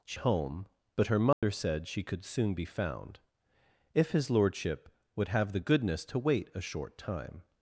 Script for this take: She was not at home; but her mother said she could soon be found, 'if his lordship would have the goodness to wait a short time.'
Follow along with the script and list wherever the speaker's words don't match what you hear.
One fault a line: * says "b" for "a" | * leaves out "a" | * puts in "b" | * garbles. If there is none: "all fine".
* leaves out "was not at"